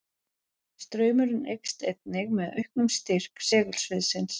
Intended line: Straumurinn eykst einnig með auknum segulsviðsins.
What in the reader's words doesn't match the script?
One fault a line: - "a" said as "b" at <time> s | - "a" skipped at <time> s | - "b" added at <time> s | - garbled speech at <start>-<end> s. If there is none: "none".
- "styrk" added at 3.0 s